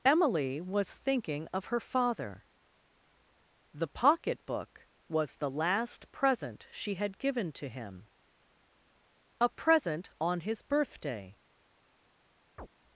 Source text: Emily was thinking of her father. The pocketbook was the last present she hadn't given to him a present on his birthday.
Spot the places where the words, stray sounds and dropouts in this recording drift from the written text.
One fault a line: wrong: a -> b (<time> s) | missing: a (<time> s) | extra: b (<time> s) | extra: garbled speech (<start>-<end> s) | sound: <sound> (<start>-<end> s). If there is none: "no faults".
wrong: hadn't -> had (7.0 s)
sound: chirp (12.6-12.7 s)